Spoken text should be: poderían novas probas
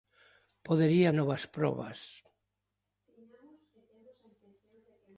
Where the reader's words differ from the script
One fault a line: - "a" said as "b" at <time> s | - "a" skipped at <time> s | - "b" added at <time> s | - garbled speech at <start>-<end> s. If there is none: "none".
none